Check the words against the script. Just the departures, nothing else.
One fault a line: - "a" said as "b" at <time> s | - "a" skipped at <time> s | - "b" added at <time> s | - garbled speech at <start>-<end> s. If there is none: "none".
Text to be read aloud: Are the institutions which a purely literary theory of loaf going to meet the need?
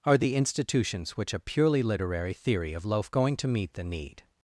none